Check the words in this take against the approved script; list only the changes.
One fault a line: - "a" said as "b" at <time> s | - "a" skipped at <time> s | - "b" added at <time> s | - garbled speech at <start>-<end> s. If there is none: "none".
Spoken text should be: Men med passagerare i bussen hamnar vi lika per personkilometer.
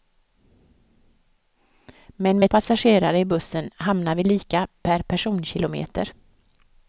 none